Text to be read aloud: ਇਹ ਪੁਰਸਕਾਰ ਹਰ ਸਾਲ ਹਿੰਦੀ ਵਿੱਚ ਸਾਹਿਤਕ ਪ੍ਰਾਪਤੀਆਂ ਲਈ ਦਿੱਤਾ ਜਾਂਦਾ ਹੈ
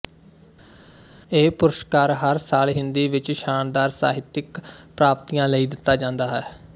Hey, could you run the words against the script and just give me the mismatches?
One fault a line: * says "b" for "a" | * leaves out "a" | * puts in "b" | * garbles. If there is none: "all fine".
* puts in "ਸ਼ਾਨਦਾਰ"